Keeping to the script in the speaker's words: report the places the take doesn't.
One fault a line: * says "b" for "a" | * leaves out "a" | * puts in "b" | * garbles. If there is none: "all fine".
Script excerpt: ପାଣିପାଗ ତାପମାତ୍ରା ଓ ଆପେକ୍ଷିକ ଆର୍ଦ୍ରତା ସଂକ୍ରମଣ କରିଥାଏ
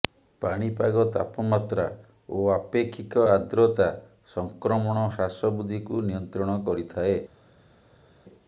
* puts in "ହ୍ରାସ ବୃଦ୍ଧିକୁ ନିୟନ୍ତ୍ରଣ"